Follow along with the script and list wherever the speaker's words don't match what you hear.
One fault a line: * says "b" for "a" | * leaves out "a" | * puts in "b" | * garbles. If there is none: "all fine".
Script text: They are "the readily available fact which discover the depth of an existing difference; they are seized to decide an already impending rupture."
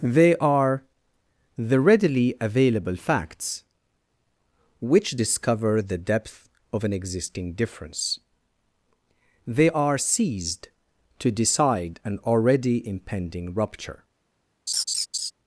* says "facts" for "fact"